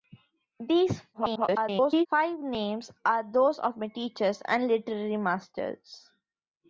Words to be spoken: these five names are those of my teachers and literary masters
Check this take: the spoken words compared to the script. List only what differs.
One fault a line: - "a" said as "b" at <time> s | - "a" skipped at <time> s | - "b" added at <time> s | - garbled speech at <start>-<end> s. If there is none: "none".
- garbled speech at 1.1-2.1 s